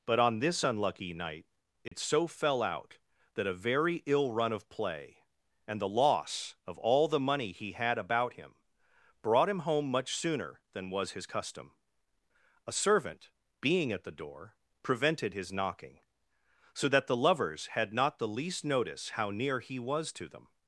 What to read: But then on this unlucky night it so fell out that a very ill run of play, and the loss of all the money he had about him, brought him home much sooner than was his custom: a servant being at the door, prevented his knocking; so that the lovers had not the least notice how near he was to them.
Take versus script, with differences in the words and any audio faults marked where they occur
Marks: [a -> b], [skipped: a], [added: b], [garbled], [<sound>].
But [skipped: then] on this unlucky night it [dropout] so fell out that a very ill run of play, and the loss of all the money he had about him, brought him home much sooner than was his custom: a servant being at the door, prevented his knocking; so that the lovers had not the least notice how near he was to them.